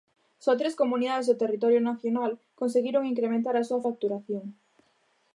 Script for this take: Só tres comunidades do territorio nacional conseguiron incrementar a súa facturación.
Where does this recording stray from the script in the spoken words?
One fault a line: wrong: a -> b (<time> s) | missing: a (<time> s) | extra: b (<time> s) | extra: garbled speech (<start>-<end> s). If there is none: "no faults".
no faults